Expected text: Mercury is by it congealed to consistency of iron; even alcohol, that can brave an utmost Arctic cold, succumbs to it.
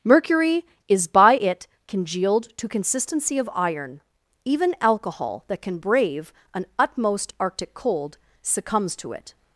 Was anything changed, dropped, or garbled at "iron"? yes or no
no